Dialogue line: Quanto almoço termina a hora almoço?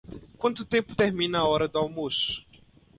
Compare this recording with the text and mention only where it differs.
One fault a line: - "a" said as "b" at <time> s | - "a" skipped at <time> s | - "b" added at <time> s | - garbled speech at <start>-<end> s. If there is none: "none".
- "almoço" said as "tempo" at 0.7 s
- "do" added at 1.7 s